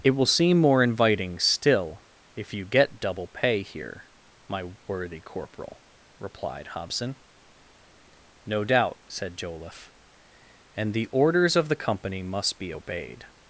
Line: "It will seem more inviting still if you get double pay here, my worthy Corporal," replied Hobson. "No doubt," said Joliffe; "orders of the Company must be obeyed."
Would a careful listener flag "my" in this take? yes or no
no